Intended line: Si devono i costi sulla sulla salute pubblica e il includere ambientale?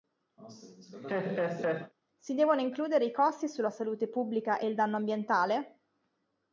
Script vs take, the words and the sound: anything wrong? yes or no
yes